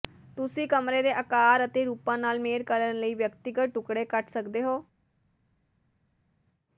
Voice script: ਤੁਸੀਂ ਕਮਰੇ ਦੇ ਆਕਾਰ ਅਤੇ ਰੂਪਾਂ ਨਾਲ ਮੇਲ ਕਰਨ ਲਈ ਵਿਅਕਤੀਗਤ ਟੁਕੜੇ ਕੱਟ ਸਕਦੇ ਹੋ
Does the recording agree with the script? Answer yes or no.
yes